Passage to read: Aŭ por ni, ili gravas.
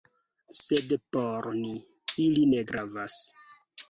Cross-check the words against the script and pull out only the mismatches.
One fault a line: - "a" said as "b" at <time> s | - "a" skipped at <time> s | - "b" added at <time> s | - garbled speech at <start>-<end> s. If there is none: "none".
- "Aŭ" said as "Sed" at 0.6 s
- "ne" added at 2.5 s